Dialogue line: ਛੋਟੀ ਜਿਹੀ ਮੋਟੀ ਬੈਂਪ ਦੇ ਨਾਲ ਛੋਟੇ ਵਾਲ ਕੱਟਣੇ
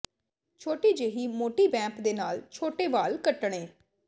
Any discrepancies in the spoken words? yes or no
no